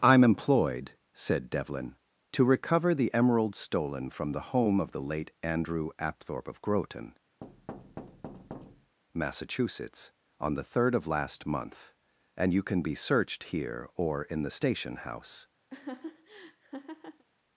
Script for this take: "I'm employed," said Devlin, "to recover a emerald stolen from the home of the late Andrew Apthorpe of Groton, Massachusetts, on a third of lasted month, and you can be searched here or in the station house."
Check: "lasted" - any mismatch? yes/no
yes